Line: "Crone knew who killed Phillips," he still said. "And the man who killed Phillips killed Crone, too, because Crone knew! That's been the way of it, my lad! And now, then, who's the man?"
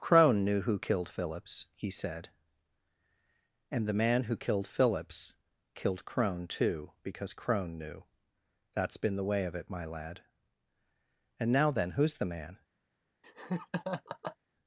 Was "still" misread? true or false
true